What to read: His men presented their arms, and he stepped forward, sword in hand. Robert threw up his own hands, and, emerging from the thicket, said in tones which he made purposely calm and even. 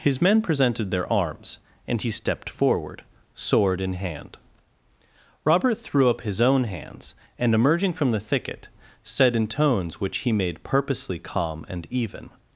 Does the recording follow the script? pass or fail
pass